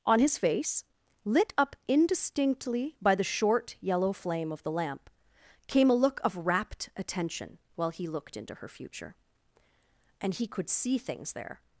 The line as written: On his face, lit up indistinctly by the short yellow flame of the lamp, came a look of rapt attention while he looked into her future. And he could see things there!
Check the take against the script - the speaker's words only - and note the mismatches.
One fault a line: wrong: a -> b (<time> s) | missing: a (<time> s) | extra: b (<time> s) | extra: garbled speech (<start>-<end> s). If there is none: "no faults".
no faults